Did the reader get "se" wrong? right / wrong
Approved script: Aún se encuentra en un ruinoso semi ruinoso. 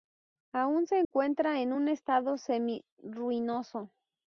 right